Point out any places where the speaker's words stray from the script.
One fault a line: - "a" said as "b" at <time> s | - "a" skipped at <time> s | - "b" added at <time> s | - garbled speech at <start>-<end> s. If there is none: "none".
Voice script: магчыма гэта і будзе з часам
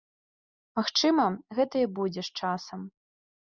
none